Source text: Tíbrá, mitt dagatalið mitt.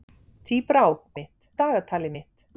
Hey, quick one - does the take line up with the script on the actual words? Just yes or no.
yes